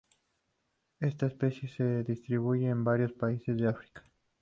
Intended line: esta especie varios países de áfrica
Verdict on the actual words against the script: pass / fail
fail